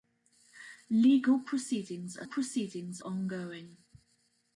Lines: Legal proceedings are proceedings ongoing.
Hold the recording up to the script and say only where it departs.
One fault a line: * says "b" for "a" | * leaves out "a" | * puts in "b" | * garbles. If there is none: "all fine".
all fine